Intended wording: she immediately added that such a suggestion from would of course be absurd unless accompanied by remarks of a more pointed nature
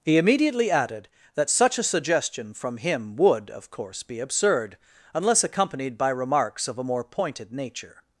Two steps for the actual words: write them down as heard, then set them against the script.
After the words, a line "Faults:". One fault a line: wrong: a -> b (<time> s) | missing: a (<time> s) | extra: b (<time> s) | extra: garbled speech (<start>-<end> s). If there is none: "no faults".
he immediately added that such a suggestion from him would of course be absurd unless accompanied by remarks of a more pointed nature
Faults:
wrong: she -> he (0.0 s)
extra: him (2.8 s)